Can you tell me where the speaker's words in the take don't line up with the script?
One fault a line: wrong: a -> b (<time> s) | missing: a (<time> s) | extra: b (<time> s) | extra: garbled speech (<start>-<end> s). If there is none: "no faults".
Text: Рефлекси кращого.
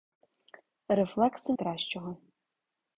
no faults